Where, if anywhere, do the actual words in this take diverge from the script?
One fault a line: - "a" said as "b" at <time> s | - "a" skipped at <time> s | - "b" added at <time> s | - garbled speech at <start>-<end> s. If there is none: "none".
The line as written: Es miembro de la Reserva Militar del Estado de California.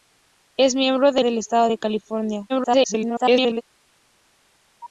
- "la Reserva Militar" skipped at 1.2 s
- garbled speech at 2.5-3.6 s